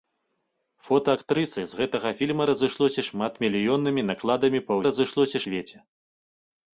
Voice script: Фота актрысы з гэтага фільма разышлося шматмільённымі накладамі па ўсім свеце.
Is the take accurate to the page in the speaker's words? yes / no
no